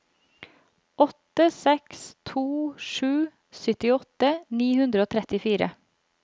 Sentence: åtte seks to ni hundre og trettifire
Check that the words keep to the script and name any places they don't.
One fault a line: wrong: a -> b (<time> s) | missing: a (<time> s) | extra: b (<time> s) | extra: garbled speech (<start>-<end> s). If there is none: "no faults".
extra: sju syttiåtte (2.8 s)